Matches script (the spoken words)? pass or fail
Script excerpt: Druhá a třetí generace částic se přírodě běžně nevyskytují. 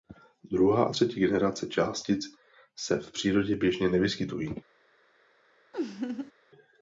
fail